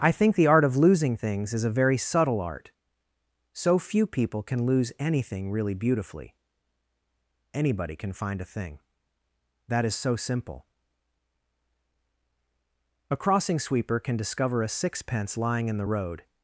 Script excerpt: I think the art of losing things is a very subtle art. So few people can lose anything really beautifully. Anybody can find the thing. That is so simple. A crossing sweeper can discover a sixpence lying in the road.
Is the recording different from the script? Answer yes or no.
yes